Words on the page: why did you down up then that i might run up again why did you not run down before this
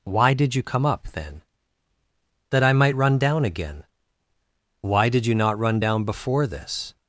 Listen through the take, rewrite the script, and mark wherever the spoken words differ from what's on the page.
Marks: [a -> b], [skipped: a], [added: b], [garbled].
why did you [down -> come] up then that i might run [up -> down] again why did you not run down before this